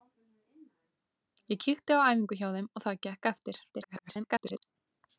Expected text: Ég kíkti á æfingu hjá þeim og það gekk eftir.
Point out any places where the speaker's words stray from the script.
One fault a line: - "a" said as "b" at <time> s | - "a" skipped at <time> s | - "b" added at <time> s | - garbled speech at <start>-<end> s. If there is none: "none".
- garbled speech at 3.7-4.6 s